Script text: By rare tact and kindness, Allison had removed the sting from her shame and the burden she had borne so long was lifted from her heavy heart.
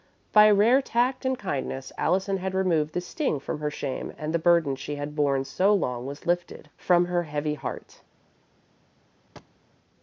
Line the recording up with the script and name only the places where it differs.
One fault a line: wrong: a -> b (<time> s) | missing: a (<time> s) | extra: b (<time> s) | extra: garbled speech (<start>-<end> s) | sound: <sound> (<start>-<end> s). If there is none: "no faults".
sound: thud (9.4-9.6 s)